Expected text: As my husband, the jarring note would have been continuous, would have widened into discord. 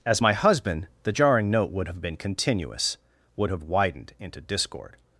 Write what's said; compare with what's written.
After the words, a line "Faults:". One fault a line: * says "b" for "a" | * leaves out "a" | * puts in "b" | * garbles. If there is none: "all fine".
As my husband, the jarring note would have been continuous, would have widened into discord.
Faults:
all fine